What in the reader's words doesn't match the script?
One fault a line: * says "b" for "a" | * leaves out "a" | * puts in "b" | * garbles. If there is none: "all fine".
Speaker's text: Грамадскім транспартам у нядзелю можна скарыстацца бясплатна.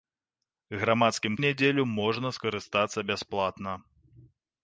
* leaves out "транспартам"